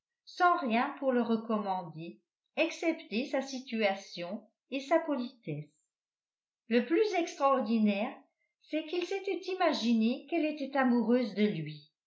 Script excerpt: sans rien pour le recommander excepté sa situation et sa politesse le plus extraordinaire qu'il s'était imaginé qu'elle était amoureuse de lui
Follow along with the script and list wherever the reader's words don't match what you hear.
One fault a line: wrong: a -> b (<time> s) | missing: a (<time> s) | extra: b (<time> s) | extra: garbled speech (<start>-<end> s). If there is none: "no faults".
extra: c'est (8.6 s)